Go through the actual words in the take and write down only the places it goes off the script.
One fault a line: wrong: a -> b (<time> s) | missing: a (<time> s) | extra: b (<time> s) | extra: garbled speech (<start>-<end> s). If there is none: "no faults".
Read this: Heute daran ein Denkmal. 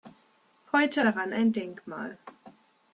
no faults